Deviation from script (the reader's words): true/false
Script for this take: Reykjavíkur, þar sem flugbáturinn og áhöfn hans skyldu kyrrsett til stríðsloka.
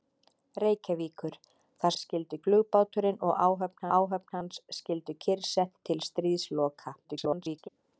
true